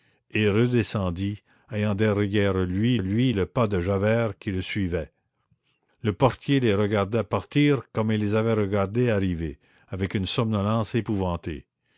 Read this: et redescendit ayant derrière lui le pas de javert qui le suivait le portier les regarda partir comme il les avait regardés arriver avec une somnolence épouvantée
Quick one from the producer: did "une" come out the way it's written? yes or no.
yes